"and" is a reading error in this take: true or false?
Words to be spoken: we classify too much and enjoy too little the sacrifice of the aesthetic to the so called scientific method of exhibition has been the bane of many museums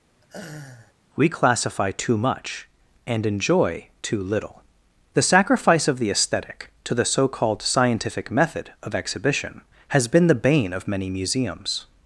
false